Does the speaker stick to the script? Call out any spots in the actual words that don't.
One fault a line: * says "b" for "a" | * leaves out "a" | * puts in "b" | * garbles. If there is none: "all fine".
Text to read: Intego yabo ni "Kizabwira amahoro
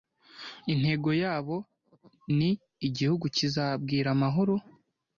* puts in "Igihugu"